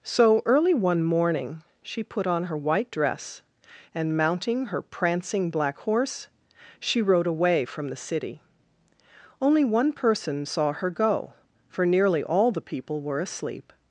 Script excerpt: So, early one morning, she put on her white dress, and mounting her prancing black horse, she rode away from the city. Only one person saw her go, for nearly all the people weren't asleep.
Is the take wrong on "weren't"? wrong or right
wrong